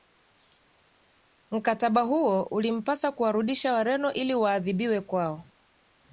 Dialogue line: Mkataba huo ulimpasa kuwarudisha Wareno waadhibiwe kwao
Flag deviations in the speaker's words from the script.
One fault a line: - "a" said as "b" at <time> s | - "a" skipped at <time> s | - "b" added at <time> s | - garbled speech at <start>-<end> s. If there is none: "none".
- "ili" added at 4.1 s